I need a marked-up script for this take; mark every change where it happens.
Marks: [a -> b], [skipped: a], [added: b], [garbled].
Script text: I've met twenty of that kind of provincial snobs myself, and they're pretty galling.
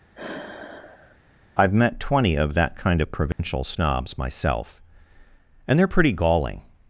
I've met twenty of that kind of provincial snobs myself, and they're pretty galling.